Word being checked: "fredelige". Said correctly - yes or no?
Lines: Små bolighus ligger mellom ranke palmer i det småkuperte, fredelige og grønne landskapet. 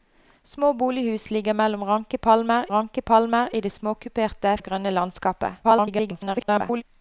no